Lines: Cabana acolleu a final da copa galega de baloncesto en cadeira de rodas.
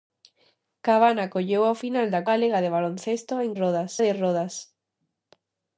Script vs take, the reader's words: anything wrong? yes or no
yes